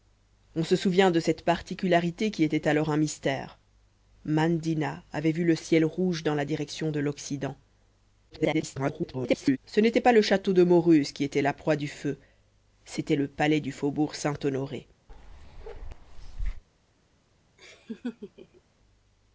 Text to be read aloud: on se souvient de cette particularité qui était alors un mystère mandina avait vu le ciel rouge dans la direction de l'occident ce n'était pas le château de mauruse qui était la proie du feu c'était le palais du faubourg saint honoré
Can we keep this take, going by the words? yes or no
no